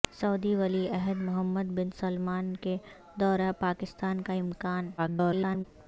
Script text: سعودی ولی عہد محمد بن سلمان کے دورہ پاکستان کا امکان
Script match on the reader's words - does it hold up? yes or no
no